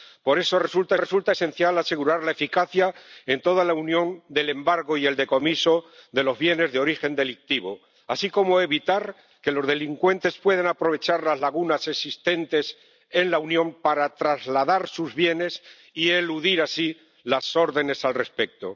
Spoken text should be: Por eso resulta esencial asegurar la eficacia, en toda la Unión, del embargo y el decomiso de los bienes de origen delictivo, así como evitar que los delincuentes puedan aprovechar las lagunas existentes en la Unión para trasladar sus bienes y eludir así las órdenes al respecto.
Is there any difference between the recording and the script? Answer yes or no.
yes